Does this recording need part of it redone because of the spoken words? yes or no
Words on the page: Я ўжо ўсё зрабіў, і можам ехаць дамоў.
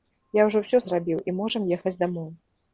no